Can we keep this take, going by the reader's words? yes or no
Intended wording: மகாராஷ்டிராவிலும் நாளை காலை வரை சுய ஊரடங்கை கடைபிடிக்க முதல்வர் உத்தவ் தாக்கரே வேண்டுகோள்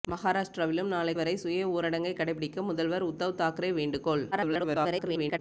no